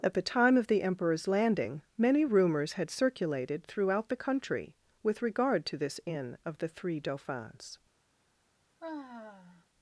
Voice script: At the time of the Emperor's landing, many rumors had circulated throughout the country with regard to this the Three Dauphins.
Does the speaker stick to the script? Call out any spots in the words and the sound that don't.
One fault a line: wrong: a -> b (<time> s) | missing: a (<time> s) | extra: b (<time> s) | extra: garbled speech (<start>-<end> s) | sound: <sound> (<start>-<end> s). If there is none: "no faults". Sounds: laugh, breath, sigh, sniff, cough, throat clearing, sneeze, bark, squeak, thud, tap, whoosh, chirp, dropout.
extra: inn of (6.1 s)
sound: sigh (8.8-9.7 s)